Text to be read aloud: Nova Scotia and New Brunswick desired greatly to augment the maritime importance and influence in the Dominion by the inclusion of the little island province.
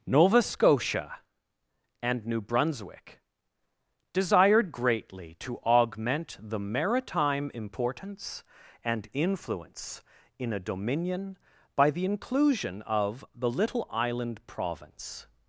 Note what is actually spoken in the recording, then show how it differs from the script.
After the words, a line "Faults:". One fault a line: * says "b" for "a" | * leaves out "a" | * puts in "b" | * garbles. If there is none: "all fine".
Nova Scotia and New Brunswick desired greatly to augment the maritime importance and influence in a Dominion by the inclusion of the little island province.
Faults:
* says "a" for "the"